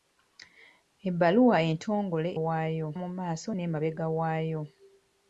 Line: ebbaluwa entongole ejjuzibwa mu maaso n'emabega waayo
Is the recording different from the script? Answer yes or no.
yes